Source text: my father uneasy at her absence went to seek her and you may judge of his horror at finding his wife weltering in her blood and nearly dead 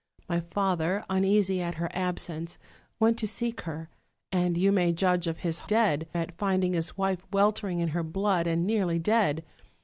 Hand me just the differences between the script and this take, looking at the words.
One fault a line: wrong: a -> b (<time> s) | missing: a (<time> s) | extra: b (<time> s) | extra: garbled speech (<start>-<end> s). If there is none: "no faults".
wrong: horror -> dead (5.6 s)